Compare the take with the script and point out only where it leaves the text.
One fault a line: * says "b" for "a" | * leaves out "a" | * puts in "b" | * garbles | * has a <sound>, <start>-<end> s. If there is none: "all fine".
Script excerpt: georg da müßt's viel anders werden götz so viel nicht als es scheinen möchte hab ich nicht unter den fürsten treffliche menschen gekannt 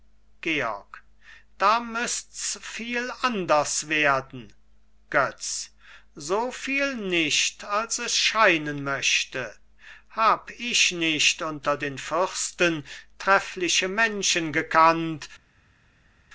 all fine